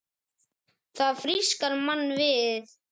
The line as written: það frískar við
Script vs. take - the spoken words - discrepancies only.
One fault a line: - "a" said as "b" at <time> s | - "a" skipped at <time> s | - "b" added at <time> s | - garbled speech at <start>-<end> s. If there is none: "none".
- "mann" added at 1.9 s